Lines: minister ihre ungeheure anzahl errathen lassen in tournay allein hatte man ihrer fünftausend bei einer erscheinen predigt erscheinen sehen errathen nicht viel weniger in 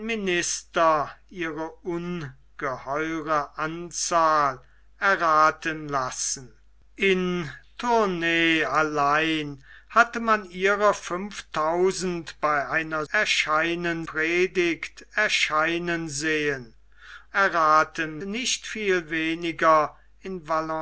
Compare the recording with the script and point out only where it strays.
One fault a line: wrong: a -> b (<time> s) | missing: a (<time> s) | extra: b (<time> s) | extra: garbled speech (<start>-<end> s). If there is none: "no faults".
no faults